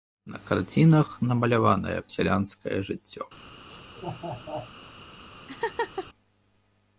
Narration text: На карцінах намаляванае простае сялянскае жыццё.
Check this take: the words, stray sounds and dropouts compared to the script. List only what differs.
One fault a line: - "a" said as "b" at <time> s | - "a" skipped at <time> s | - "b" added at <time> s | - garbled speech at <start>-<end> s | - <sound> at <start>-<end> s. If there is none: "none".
- "простае" skipped at 2.0 s
- laugh at 3.7-4.7 s
- laugh at 5.5-6.1 s